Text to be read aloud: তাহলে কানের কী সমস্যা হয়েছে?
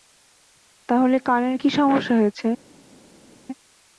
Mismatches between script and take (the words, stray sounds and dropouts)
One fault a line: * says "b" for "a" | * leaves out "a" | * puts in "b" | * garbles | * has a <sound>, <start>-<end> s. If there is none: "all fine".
all fine